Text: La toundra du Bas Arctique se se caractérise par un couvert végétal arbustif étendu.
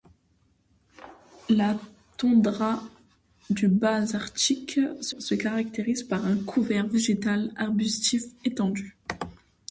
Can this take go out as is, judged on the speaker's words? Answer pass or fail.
pass